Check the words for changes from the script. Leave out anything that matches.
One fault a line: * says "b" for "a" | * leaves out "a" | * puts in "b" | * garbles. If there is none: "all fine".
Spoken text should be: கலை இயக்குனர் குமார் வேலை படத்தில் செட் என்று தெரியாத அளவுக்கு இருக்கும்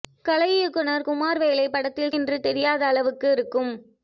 * leaves out "செட்"